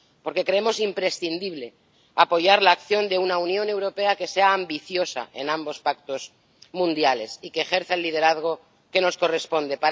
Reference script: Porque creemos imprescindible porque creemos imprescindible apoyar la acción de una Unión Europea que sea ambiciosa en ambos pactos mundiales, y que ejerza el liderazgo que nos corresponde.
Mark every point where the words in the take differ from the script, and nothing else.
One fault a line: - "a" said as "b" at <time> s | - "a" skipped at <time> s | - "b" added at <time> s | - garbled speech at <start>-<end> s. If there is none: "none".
- "porque creemos imprescindible" skipped at 1.8 s